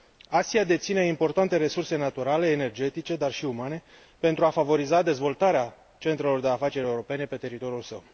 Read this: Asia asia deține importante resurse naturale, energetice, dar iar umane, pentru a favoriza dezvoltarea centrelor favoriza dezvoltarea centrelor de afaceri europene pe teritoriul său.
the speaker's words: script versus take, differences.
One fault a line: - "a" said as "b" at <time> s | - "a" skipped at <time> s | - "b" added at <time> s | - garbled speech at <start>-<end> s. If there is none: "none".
- "asia" skipped at 0.6 s
- "iar" said as "și" at 3.3 s
- "favoriza dezvoltarea centrelor" skipped at 6.4 s